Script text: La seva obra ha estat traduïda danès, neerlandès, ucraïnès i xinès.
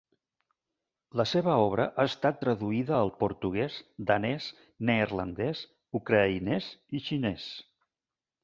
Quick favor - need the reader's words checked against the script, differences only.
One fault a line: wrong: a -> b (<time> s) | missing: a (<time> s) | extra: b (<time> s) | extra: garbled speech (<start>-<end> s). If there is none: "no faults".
extra: al portuguès (3.0 s)